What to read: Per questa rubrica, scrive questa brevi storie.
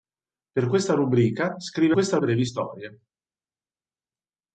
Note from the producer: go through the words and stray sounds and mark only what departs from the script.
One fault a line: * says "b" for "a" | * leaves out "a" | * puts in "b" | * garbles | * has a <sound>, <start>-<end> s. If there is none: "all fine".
all fine